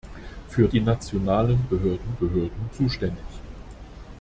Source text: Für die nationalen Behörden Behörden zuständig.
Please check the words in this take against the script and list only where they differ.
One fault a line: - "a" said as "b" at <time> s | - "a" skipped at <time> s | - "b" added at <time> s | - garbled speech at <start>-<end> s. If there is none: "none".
none